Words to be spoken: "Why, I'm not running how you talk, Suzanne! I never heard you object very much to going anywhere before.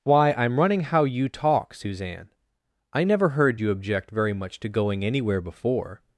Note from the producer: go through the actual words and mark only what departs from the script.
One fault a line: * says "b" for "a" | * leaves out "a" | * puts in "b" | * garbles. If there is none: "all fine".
* leaves out "not"